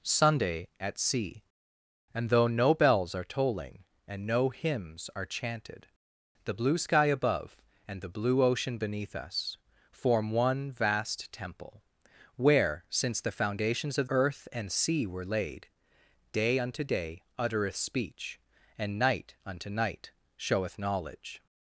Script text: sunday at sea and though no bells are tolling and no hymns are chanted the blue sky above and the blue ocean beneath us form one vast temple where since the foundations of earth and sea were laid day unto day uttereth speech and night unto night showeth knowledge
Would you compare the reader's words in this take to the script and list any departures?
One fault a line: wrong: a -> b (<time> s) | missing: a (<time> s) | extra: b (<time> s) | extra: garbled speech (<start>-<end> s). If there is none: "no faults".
no faults